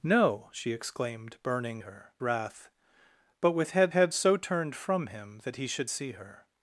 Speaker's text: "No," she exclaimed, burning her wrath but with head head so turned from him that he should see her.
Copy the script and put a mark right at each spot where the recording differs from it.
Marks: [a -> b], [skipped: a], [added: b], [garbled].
"No," she exclaimed, burning her wrath but with head head so turned from him that he should see her.